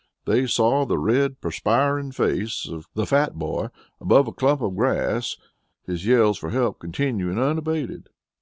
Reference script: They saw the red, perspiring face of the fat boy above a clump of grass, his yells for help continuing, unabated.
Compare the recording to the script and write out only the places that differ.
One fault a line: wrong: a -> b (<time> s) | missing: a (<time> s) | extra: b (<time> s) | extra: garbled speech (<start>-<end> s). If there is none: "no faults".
no faults